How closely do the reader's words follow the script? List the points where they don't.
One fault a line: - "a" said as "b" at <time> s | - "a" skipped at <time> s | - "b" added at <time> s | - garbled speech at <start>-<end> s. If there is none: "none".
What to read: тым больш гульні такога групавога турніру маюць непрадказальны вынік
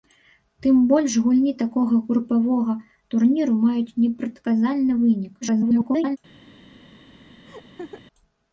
- garbled speech at 5.4-6.2 s